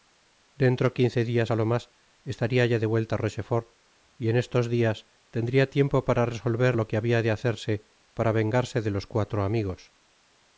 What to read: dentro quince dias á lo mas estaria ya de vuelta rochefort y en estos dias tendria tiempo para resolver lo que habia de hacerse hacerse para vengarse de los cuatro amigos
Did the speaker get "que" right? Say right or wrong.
right